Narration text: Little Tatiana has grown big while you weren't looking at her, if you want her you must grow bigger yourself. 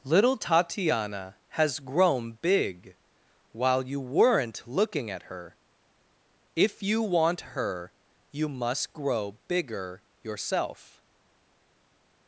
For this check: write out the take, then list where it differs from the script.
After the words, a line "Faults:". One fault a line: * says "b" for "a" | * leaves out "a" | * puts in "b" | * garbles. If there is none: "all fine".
Little Tatiana has grown big while you weren't looking at her, if you want her you must grow bigger yourself.
Faults:
all fine